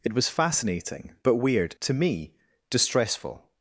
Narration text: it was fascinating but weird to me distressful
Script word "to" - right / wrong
right